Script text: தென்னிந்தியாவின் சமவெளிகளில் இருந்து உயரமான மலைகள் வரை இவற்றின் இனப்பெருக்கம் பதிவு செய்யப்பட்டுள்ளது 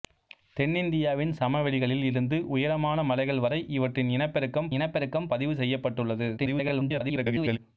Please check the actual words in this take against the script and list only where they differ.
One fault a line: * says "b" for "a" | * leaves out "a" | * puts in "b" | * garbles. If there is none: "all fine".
* puts in "இனப்பெருக்கம்"
* garbles